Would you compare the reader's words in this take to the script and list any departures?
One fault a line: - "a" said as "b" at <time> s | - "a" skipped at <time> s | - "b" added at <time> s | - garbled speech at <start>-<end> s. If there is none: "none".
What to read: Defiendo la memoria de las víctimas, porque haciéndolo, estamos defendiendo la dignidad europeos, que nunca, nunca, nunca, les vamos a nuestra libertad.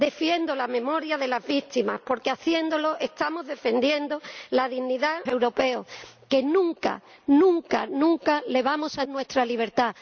none